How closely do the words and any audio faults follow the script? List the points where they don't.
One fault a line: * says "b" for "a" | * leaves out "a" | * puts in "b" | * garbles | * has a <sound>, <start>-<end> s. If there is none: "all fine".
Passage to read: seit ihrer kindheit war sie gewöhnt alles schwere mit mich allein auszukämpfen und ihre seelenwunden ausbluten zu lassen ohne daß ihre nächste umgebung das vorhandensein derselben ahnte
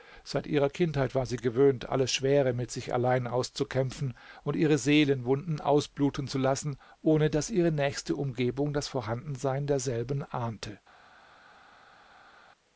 * says "sich" for "mich"